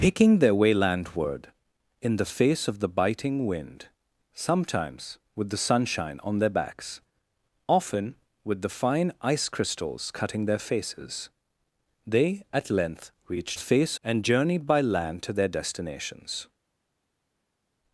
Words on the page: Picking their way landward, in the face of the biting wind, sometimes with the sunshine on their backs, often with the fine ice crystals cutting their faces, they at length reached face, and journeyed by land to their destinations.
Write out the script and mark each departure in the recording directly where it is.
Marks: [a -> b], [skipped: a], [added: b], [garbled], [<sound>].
Picking their way landward, in the face of the biting wind, sometimes with the sunshine on their backs, often with the fine ice crystals cutting their faces, they at length reached face, and journeyed by land to their destinations.